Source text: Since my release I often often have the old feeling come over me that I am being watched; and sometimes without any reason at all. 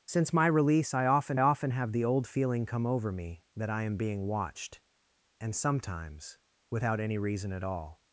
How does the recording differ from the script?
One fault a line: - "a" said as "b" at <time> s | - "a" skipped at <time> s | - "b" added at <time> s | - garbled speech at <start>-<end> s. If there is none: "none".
none